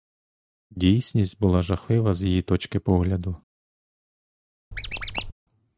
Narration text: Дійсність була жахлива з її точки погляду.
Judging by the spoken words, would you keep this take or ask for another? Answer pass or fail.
pass